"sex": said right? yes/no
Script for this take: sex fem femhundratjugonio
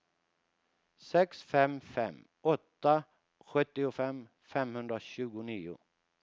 yes